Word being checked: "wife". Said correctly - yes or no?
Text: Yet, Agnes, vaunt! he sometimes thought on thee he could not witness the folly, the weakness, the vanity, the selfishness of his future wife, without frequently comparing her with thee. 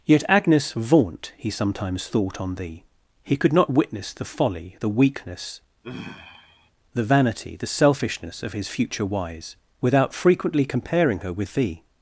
no